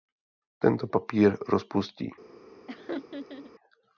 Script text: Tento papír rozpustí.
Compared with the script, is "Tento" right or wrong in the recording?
right